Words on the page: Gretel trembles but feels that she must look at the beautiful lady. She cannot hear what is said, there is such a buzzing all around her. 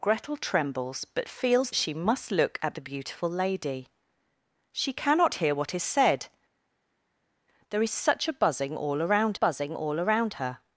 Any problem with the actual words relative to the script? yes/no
yes